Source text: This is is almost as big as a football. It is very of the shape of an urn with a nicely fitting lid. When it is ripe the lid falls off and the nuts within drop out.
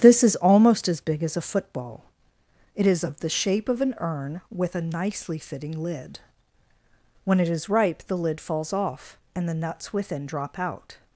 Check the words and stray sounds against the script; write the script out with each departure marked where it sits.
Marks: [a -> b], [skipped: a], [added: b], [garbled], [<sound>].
This is [skipped: is] almost as big as a football. It is [skipped: very] of the shape of an urn with a nicely fitting lid. When it is ripe the lid falls off and the nuts within drop out.